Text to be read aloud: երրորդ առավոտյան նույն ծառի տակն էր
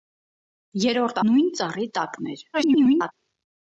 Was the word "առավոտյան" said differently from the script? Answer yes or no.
yes